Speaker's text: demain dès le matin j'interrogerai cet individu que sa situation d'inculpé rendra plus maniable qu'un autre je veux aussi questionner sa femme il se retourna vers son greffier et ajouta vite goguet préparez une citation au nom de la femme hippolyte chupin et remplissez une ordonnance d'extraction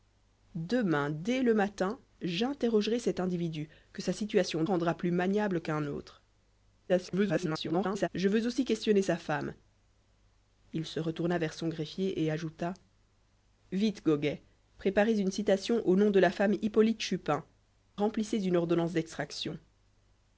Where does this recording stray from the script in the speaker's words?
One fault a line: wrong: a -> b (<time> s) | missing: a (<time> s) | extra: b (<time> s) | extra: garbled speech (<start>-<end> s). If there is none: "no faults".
missing: d'inculpé (4.6 s)
extra: garbled speech (6.9-8.1 s)
missing: et (17.5 s)